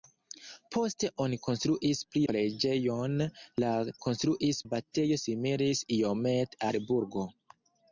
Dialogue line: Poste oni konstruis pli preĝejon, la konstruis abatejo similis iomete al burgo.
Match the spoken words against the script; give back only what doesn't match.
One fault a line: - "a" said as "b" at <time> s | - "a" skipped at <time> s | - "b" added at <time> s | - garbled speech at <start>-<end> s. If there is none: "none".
none